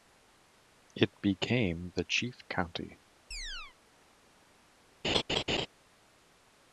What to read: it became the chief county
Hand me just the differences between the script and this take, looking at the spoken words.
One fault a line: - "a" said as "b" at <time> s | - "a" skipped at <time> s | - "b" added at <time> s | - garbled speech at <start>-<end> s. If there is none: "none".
none